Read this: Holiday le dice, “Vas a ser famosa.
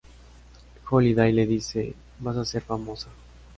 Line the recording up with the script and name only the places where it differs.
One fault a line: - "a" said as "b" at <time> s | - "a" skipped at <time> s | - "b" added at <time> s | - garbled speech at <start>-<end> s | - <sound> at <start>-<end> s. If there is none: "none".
none